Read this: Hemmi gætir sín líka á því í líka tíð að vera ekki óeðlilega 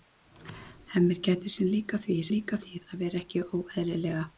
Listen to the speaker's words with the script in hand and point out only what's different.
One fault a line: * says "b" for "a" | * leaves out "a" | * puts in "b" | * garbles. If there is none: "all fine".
all fine